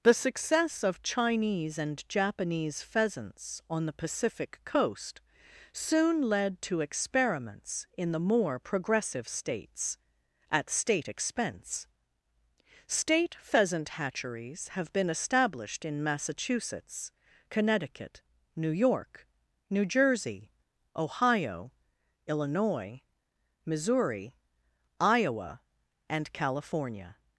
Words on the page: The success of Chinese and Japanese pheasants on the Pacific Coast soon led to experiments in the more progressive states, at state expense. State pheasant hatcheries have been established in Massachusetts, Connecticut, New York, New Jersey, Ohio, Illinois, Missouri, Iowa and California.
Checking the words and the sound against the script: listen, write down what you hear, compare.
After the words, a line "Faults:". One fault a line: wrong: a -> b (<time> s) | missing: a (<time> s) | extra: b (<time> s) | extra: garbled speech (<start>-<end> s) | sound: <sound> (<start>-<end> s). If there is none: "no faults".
The success of Chinese and Japanese pheasants on the Pacific Coast soon led to experiments in the more progressive states, at state expense. State pheasant hatcheries have been established in Massachusetts, Connecticut, New York, New Jersey, Ohio, Illinois, Missouri, Iowa and California.
Faults:
no faults